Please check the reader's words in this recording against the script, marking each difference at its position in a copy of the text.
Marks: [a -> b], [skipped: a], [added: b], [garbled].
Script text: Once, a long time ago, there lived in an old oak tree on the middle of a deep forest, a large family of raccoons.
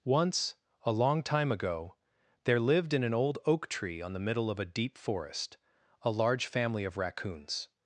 Once, a long time ago, there lived in an old oak tree on the middle of a deep forest, a large family of raccoons.